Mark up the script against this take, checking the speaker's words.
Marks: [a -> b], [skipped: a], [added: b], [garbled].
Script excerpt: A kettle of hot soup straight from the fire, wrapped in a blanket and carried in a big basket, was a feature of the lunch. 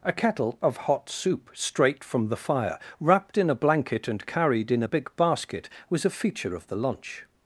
A kettle of hot soup straight from the fire, wrapped in a blanket and carried in a big basket, was a feature of the lunch.